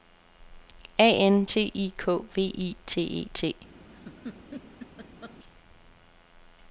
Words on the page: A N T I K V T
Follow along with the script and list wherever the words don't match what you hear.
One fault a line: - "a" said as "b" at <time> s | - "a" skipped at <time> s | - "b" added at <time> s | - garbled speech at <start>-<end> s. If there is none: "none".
- "I T E" added at 2.6 s